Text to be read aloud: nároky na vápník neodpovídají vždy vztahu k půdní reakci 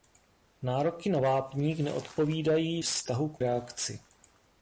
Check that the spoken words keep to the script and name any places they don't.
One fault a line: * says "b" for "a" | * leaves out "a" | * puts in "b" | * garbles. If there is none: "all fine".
* leaves out "vždy"
* leaves out "půdní"